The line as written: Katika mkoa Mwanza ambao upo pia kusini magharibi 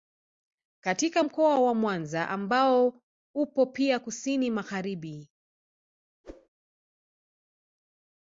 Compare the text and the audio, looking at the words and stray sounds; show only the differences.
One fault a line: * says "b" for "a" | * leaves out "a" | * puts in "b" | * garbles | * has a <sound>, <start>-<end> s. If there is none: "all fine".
* puts in "wa"
* has a whoosh, 6.2-6.5 s